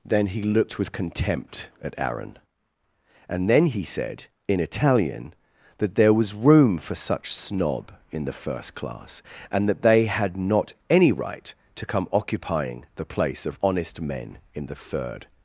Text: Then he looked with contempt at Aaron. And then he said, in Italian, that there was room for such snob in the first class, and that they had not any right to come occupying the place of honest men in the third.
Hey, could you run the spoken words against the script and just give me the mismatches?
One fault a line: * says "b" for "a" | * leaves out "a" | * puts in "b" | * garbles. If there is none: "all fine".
all fine